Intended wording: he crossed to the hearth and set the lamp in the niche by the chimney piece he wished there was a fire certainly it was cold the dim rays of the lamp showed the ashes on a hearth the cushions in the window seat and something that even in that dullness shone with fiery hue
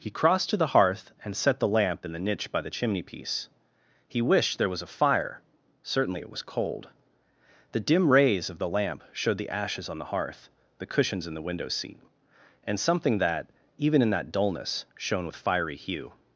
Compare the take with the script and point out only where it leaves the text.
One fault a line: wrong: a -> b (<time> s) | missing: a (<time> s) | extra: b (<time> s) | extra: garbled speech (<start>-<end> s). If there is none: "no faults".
wrong: a -> the (10.0 s)